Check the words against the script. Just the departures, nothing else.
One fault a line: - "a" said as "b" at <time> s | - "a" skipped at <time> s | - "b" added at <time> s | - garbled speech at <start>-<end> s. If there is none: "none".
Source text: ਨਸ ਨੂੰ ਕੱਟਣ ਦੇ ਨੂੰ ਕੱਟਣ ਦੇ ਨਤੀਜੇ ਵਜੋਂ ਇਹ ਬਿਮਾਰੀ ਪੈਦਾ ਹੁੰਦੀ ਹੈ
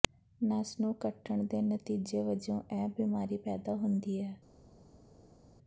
- "ਨੂੰ ਕੱਟਣ ਦੇ" skipped at 1.6 s